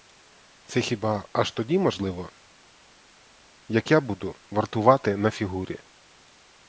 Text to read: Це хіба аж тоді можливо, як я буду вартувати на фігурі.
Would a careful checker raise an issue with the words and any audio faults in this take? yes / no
no